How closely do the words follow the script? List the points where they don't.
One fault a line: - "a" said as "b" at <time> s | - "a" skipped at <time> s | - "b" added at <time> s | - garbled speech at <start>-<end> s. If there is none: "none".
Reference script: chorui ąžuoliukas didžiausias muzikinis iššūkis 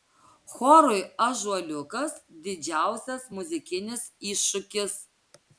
none